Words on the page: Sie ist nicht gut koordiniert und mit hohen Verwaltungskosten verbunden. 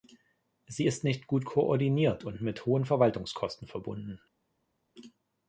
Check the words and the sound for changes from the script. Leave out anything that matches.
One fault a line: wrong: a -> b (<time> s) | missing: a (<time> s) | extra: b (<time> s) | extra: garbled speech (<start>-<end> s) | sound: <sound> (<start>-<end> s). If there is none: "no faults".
no faults